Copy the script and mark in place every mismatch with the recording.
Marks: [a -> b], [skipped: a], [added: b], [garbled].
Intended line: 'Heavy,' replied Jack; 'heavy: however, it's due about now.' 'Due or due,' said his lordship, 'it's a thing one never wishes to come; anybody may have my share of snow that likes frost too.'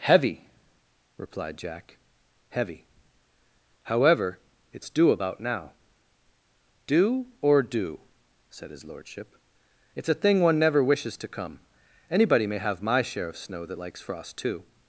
'Heavy,' replied Jack; 'heavy: however, it's due about now.' 'Due or due,' said his lordship, 'it's a thing one never wishes to come; anybody may have my share of snow that likes frost too.'